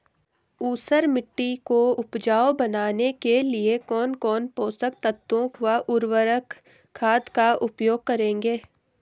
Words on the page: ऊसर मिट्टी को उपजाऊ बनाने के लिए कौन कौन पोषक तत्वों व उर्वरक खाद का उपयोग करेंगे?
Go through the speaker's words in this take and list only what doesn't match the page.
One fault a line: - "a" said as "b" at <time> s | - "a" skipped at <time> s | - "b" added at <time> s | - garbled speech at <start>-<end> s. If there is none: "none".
none